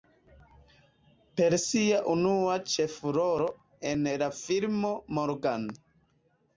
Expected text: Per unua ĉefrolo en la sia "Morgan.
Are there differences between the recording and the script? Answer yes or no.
yes